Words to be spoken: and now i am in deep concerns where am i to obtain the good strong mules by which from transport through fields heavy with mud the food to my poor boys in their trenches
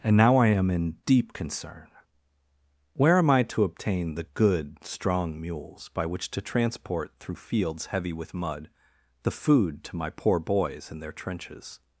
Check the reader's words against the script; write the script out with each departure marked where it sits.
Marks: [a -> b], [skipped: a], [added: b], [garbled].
and now i am in deep [concerns -> concern] where am i to obtain the good strong mules by which [from -> to] transport through fields heavy with mud the food to my poor boys in their trenches